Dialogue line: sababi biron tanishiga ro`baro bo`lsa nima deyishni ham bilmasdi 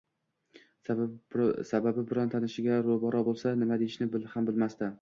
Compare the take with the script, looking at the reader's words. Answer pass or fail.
pass